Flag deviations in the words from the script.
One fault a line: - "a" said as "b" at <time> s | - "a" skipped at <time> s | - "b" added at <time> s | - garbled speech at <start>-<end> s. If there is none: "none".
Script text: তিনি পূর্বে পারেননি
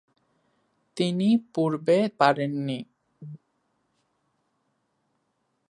none